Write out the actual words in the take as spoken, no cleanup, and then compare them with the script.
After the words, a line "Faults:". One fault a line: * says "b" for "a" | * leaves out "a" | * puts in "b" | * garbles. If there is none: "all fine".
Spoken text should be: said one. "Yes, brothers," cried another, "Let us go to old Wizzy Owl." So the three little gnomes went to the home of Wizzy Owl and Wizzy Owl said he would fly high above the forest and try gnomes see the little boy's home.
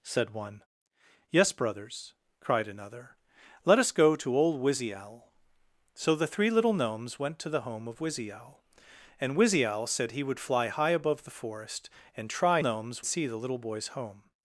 said one. "Yes, brothers," cried another, "Let us go to old Wizzy Owl." So the three little gnomes went to the home of Wizzy Owl and Wizzy Owl said he would fly high above the forest and try gnomes see the little boy's home.
Faults:
all fine